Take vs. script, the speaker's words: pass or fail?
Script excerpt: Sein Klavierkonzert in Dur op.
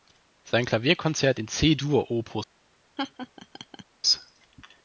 fail